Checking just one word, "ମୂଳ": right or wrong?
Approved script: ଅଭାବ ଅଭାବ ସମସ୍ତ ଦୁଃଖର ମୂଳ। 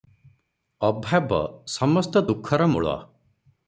right